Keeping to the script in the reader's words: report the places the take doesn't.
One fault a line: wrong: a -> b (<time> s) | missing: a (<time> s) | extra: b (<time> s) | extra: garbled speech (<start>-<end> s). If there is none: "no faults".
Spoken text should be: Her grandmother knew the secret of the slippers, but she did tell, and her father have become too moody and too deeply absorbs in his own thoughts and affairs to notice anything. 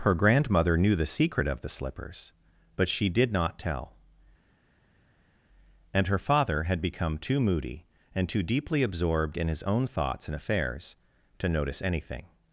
extra: not (3.3 s)
wrong: have -> had (6.6 s)
wrong: absorbs -> absorbed (8.8 s)